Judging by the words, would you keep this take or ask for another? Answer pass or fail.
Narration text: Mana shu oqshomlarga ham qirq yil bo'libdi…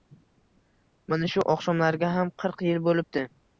pass